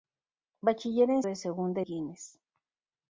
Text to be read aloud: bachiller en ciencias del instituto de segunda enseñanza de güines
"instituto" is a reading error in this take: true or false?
true